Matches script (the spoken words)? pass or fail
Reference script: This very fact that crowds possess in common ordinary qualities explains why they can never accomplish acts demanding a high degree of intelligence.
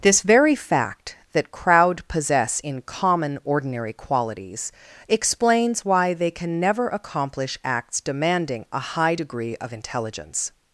fail